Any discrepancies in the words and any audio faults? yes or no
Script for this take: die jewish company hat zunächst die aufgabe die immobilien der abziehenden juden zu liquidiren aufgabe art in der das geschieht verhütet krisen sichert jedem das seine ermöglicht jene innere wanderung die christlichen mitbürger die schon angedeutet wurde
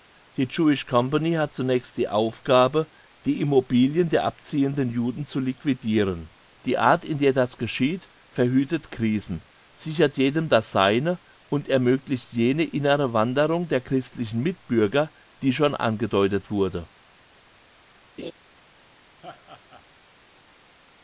yes